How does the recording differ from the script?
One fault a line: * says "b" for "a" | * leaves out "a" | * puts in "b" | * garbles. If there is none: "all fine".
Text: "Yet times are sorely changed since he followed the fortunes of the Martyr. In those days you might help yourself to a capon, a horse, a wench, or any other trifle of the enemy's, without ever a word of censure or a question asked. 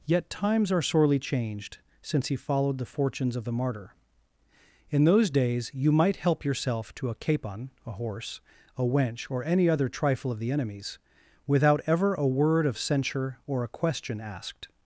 all fine